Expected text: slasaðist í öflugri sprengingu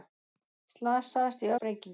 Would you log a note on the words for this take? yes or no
yes